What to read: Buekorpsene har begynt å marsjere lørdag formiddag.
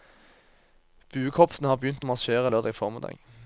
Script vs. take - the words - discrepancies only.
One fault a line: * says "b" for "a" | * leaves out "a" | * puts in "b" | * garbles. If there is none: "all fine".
all fine